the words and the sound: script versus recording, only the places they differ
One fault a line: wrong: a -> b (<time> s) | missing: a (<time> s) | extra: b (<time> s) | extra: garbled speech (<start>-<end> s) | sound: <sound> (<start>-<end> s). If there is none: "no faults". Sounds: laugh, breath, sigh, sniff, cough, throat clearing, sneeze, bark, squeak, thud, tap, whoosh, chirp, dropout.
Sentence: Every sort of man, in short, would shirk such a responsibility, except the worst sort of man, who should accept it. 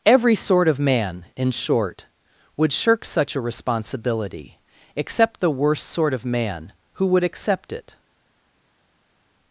wrong: should -> would (7.1 s)